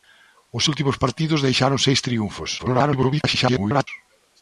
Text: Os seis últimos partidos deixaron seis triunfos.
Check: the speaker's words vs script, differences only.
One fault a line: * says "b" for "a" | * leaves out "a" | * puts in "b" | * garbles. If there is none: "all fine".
* leaves out "seis"
* garbles